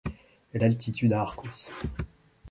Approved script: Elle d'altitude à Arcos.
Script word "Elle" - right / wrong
right